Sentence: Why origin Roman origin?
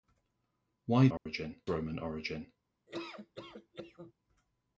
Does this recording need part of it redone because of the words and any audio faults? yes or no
yes